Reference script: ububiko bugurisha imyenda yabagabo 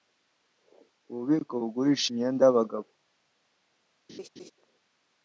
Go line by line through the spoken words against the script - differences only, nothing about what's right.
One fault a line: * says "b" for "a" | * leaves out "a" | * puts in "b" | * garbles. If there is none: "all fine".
all fine